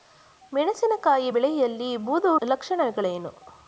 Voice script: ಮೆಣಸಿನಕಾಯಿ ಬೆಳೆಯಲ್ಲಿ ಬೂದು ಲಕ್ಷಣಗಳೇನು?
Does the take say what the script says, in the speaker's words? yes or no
yes